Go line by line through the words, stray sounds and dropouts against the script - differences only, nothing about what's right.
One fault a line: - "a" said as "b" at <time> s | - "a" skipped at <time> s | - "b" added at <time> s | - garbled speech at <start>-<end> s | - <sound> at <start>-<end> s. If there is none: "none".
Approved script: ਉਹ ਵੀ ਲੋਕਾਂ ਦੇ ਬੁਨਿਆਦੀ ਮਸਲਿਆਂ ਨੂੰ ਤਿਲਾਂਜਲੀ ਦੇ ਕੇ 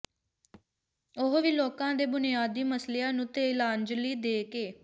- thud at 0.5-0.7 s